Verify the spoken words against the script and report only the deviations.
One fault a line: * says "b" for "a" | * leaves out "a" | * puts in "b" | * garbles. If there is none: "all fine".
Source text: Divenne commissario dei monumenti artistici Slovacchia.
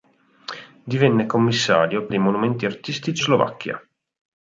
all fine